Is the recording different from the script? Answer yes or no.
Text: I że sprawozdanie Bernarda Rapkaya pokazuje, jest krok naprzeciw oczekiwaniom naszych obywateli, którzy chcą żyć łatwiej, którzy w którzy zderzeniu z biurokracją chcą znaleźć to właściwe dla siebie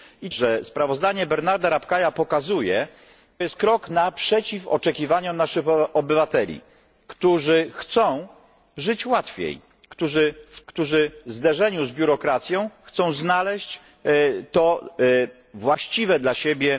no